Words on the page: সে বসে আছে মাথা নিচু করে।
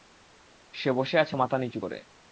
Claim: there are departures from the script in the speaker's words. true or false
false